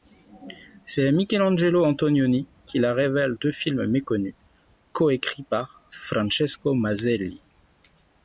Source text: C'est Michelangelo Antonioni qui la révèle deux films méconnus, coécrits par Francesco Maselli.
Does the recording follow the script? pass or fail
pass